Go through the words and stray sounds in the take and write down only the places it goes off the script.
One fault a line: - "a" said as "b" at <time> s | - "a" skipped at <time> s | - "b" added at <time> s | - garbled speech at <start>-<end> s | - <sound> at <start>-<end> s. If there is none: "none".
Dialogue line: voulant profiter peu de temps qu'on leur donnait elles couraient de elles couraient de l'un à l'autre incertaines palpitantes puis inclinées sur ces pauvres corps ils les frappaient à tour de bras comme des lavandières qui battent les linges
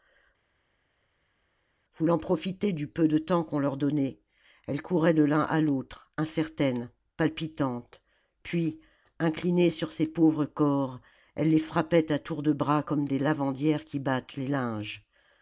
- "du" added at 2.7 s
- "elles couraient de" skipped at 5.2 s
- "ils" said as "elles" at 11.3 s